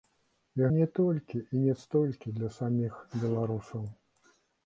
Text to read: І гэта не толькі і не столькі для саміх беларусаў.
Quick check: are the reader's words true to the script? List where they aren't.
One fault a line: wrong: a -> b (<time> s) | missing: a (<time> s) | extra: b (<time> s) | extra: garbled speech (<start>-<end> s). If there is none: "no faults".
missing: гэта (0.7 s)